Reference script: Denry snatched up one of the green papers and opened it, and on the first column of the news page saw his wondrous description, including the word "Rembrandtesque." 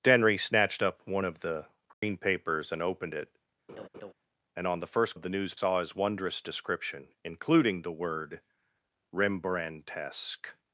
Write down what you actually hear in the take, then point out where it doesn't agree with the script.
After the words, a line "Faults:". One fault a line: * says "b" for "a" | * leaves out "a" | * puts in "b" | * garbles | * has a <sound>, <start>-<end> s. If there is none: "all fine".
Denry snatched up one of the green papers and opened it, and on the first of the news saw his wondrous description, including the word "Rembrandtesque."
Faults:
* has a dropout, 1.9-2.0 s
* has a laugh, 3.7-4.1 s
* leaves out "column"
* leaves out "page"